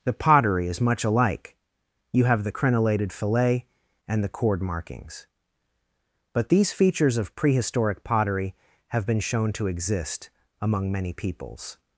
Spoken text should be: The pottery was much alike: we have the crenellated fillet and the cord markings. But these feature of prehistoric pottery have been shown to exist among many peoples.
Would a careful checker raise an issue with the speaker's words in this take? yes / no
yes